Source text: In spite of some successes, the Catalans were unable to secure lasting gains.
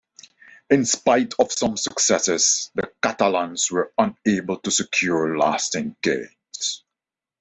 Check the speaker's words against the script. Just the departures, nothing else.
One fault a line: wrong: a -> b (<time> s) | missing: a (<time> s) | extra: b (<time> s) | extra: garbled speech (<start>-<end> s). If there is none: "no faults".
no faults